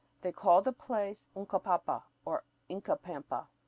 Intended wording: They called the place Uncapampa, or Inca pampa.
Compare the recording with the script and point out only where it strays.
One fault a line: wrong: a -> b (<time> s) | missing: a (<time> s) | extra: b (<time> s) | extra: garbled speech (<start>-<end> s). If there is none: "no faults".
no faults